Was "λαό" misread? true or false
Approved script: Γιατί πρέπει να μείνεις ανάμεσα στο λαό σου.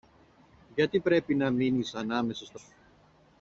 true